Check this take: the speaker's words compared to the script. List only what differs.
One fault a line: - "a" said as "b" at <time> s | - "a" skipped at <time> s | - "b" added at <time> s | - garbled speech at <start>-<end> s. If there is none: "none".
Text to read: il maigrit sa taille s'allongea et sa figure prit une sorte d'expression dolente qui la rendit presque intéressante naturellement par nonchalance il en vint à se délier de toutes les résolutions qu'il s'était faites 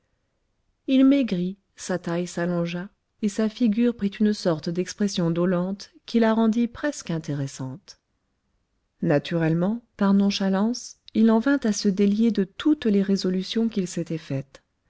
none